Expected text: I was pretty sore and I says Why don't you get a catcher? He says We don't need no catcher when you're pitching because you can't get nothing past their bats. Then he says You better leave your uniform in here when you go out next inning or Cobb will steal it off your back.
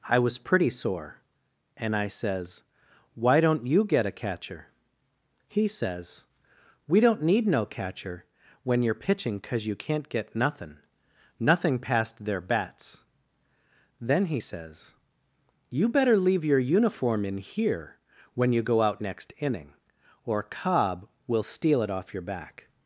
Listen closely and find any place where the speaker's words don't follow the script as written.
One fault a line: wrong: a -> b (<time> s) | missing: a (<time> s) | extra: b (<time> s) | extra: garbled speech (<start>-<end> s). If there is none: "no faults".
extra: nothing (11.4 s)